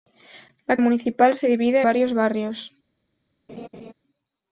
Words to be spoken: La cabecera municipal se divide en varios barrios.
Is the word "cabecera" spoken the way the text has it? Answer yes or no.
no